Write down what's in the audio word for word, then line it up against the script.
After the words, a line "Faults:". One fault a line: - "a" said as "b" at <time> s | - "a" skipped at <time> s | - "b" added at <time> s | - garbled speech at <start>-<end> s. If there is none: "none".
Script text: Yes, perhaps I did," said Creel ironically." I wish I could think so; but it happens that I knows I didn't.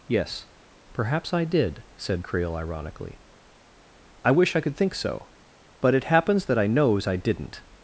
Yes, perhaps I did," said Creel ironically." I wish I could think so; but it happens that I knows I didn't.
Faults:
none